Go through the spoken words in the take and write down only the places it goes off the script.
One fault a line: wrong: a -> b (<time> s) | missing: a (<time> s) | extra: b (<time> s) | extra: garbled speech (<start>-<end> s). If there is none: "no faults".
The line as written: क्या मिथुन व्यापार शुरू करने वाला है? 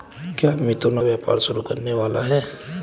no faults